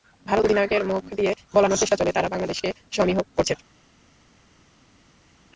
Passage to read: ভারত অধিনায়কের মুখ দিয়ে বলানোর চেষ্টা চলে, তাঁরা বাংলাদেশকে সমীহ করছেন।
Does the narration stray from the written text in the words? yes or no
no